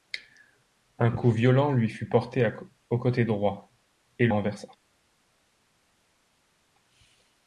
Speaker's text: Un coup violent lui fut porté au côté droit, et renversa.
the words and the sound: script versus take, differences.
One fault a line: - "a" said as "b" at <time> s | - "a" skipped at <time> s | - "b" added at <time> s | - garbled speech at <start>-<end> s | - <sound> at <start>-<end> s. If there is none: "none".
none